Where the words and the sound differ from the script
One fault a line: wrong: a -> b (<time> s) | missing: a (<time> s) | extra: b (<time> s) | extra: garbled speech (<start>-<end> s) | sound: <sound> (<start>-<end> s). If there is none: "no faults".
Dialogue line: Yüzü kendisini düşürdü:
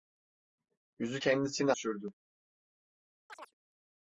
sound: chirp (3.3-3.5 s)